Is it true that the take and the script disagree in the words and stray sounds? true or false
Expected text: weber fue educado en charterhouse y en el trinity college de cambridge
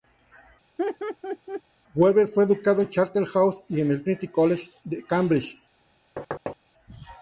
true